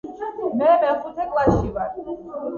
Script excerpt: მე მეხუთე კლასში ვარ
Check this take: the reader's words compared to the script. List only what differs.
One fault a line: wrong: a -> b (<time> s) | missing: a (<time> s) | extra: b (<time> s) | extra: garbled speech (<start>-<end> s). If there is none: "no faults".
no faults